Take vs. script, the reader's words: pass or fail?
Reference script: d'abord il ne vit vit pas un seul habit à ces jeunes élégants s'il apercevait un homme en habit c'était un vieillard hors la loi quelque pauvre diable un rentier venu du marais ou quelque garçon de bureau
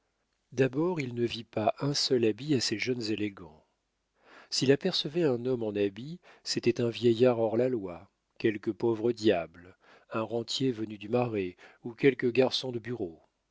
fail